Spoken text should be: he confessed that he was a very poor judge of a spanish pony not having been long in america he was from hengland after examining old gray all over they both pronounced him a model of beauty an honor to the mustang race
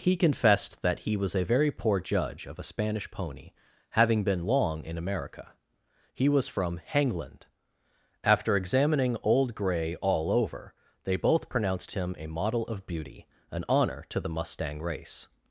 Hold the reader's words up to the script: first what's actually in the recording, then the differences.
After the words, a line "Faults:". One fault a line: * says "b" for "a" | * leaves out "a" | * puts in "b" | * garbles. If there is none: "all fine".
he confessed that he was a very poor judge of a spanish pony having been long in america he was from hengland after examining old gray all over they both pronounced him a model of beauty an honor to the mustang race
Faults:
* leaves out "not"